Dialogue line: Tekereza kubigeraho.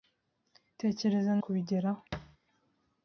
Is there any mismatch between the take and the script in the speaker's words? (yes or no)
no